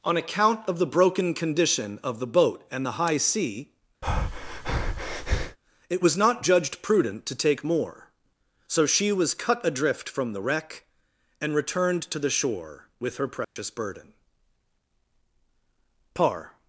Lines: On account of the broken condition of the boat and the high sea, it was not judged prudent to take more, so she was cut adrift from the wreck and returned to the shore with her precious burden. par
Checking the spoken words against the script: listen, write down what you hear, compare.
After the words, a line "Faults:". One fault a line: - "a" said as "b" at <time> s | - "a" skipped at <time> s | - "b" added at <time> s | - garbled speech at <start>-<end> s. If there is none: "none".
On account of the broken condition of the boat and the high sea, it was not judged prudent to take more, so she was cut adrift from the wreck and returned to the shore with her precious burden. par
Faults:
none